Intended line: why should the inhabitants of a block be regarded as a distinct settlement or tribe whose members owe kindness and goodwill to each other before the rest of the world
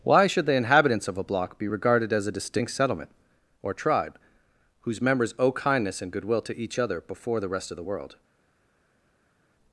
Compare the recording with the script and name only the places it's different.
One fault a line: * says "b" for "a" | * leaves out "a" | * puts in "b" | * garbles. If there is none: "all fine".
all fine